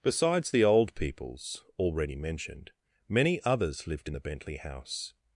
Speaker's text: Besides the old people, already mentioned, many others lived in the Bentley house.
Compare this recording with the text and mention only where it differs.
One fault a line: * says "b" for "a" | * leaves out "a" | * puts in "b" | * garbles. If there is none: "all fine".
* says "peoples" for "people"